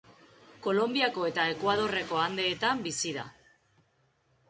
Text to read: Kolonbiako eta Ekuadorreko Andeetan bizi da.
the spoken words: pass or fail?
pass